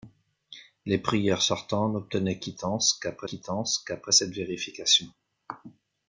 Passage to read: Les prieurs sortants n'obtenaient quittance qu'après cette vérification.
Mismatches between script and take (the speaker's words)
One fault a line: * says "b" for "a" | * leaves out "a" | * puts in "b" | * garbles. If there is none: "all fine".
* puts in "quittance qu'après"